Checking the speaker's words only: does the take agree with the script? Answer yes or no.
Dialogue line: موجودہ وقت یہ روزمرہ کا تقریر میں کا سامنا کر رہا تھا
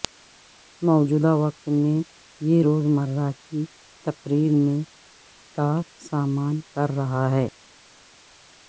no